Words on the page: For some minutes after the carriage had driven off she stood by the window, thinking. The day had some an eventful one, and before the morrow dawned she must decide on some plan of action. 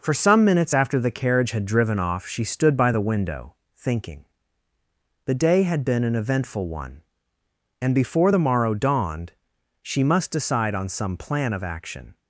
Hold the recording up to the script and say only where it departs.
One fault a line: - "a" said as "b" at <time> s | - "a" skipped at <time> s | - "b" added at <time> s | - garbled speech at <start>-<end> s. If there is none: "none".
- "some" said as "been" at 5.8 s